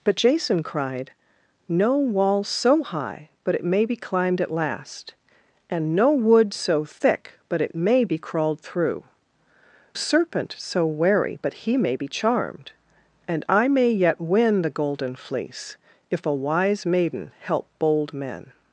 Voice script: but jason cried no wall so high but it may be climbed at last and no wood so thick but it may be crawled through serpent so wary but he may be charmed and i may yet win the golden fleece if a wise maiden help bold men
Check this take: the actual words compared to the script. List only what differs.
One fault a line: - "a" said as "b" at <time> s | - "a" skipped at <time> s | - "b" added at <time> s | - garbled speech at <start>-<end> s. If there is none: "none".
none